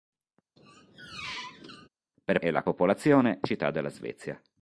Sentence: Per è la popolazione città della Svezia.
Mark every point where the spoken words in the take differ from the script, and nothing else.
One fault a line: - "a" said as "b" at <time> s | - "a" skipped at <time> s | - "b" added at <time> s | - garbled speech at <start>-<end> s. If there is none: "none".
none